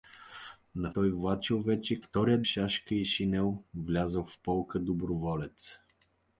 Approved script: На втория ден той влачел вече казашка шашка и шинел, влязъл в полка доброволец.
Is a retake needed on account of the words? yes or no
yes